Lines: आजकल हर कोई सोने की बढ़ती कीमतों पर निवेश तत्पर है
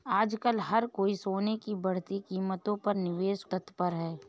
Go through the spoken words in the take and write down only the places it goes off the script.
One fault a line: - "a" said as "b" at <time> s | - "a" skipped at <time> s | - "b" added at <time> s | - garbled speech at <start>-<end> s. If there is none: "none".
none